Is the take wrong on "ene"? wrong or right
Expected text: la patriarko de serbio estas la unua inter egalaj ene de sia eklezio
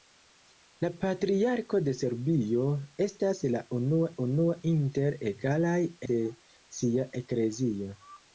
wrong